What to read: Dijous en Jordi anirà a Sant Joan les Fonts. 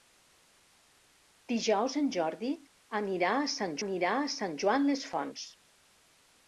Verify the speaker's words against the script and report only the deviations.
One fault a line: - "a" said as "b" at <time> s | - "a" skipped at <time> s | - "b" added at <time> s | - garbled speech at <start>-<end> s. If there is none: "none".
- "anirà a Sant" added at 3.8 s